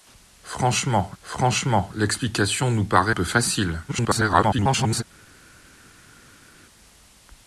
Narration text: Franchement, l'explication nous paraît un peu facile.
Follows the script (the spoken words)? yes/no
no